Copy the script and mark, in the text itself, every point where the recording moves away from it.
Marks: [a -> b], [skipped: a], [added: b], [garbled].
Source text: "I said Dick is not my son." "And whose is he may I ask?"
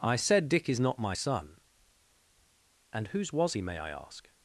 "I said Dick is not my son." "And whose [is -> was] he may I ask?"